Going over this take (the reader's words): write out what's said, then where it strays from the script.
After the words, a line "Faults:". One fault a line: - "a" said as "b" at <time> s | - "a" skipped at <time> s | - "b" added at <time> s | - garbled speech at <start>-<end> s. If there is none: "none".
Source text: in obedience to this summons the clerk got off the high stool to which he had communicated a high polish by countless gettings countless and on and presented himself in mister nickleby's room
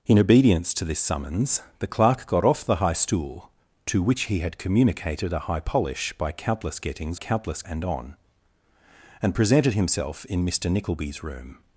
in obedience to this summons the clerk got off the high stool to which he had communicated a high polish by countless gettings countless and on and presented himself in mister nickleby's room
Faults:
none